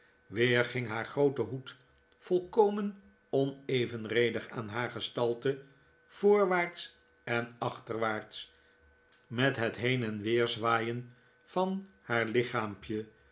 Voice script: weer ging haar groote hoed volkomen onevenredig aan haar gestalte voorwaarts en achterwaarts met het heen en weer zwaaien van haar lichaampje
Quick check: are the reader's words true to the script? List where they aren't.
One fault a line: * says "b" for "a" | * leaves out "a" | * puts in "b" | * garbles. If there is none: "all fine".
all fine